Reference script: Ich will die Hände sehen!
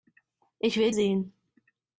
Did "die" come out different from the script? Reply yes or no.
yes